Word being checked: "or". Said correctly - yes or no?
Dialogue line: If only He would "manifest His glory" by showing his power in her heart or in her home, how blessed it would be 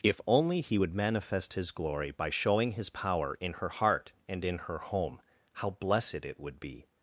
no